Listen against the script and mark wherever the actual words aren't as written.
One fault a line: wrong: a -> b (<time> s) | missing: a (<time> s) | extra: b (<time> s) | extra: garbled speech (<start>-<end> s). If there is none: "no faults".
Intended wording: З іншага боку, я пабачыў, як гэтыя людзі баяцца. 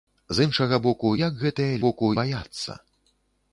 missing: я пабачыў (1.1 s)
wrong: людзі -> боку (1.8 s)